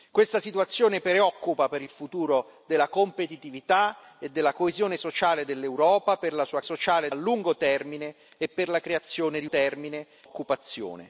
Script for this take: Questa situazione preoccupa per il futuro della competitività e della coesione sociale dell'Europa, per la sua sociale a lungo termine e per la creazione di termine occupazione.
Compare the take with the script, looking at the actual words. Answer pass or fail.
pass